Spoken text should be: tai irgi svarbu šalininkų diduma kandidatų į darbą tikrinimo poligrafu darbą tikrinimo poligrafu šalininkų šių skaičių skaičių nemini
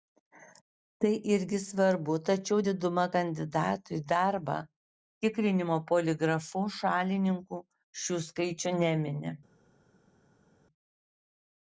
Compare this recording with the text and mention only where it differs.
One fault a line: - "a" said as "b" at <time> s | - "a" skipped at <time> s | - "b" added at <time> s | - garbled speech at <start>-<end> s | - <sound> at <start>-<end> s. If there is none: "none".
- "šalininkų" said as "tačiau" at 2.3 s
- "darbą tikrinimo poligrafu" skipped at 6.6 s
- "skaičių" skipped at 8.7 s